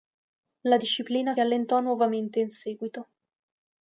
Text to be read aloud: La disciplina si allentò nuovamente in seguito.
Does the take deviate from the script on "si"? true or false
true